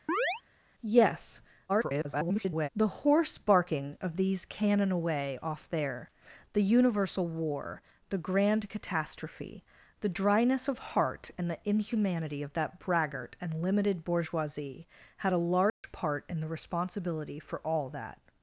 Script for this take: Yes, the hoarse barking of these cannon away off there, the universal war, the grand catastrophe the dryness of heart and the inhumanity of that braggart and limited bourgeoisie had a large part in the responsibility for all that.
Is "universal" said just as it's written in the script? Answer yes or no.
yes